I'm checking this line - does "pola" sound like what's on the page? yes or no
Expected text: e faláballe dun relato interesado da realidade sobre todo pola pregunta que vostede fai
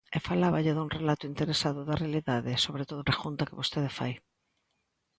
no